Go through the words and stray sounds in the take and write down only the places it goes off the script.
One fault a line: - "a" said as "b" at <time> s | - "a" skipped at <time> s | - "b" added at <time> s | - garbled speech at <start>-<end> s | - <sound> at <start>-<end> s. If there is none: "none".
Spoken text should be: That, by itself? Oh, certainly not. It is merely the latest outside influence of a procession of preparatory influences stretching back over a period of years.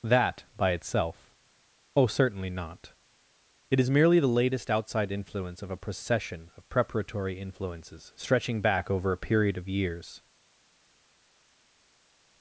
none